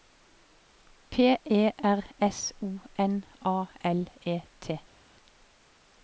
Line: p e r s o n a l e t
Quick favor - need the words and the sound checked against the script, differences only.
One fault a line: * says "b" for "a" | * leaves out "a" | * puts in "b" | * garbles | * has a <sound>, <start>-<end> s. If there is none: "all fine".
all fine